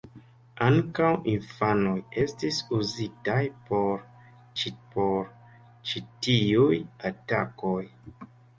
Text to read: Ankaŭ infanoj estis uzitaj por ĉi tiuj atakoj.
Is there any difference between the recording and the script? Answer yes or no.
yes